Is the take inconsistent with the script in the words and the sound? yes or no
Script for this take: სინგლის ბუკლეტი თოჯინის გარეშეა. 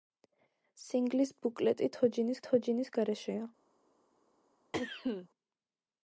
yes